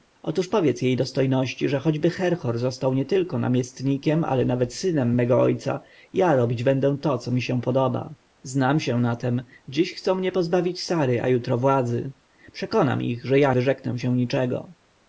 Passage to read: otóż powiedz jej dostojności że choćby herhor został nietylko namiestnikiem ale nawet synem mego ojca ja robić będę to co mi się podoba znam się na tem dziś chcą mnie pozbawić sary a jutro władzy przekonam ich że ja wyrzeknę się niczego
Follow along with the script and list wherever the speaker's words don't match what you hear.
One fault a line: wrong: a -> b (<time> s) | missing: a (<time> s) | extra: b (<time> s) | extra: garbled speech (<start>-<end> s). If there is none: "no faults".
no faults